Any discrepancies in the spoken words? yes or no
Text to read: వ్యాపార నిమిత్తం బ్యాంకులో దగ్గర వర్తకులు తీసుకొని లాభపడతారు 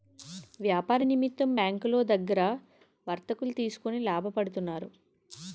no